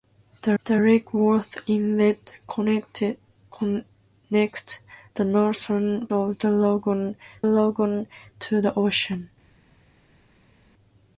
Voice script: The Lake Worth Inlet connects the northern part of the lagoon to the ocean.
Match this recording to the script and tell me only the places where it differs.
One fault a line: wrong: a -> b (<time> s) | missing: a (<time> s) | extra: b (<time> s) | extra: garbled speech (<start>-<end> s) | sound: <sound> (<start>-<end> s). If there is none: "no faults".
extra: the (0.6 s)
missing: part (6.1 s)
extra: lagoon (7.4 s)